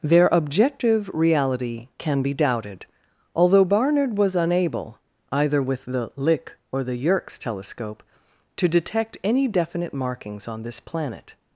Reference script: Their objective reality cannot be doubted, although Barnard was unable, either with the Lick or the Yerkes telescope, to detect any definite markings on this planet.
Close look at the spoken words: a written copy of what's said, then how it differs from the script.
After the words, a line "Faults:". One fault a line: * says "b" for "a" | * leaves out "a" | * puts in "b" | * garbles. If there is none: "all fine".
Their objective reality can be doubted, although Barnard was unable, either with the Lick or the Yerkes telescope, to detect any definite markings on this planet.
Faults:
* says "can" for "cannot"